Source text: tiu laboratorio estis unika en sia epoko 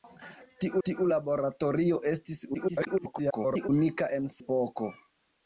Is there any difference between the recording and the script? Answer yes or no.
yes